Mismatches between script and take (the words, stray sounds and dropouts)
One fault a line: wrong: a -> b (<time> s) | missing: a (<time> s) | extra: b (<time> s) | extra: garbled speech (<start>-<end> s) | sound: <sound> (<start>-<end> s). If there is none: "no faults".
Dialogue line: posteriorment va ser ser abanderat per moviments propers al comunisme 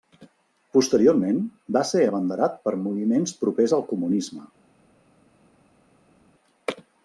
missing: ser (2.0 s)